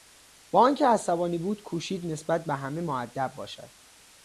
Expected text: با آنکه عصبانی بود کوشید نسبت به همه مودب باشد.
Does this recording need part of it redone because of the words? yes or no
no